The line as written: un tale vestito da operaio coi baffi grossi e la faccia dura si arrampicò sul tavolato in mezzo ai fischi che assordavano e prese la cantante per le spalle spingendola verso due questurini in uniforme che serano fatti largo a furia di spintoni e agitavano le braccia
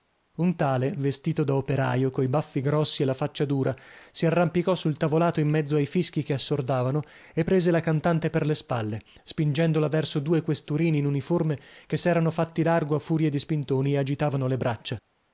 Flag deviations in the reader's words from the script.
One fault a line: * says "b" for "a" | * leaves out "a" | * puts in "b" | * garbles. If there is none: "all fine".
all fine